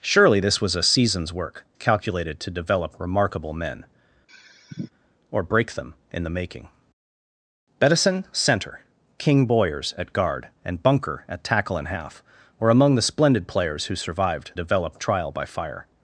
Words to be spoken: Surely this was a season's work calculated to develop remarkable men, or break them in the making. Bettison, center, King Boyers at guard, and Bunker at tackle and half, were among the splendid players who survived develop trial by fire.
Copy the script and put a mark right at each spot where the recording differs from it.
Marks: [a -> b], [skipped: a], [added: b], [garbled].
Surely this was a season's work calculated to develop remarkable men, or break them in the making. Bettison, center, King Boyers at guard, and Bunker at tackle and half, were among the splendid players who survived develop trial by fire.